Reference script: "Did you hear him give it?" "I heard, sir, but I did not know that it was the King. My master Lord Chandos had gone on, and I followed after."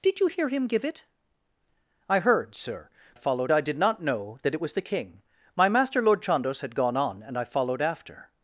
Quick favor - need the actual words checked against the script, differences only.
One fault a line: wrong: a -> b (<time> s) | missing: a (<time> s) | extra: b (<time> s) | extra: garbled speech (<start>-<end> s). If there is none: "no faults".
wrong: but -> followed (3.1 s)